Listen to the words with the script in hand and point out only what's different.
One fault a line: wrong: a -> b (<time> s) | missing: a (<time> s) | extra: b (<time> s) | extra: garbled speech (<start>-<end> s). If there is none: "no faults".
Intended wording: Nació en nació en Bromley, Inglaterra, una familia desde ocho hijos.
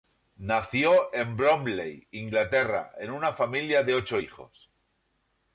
missing: nació en (1.4 s)
extra: en (3.0 s)
wrong: desde -> de (3.8 s)